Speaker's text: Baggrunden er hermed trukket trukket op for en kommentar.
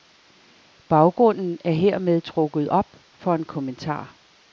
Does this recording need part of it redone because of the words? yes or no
yes